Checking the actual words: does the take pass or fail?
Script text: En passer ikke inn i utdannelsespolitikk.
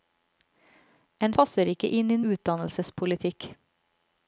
pass